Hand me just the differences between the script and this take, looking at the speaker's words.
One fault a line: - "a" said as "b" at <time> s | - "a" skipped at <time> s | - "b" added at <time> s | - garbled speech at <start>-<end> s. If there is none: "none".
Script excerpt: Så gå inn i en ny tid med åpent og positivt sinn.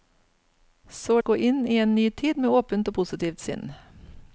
none